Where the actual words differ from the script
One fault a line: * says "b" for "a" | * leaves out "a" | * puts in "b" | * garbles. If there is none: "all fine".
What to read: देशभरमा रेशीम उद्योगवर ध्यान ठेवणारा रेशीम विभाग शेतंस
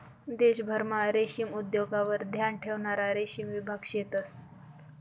all fine